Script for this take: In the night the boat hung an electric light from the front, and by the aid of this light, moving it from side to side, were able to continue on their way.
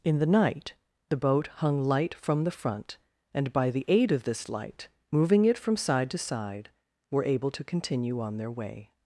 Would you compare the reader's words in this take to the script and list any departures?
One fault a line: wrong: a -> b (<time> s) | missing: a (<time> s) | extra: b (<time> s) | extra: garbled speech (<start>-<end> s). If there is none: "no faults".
missing: an electric (1.8 s)